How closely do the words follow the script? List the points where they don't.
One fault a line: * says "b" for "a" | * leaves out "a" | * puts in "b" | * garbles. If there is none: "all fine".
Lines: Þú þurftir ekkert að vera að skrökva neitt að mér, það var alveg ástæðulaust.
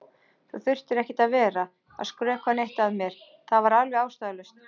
all fine